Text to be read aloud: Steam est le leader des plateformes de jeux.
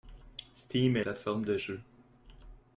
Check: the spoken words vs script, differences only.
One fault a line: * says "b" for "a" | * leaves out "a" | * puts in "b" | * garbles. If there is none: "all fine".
* leaves out "le leader des"